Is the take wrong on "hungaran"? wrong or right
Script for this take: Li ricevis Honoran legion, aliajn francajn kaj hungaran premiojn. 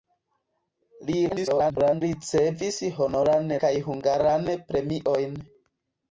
right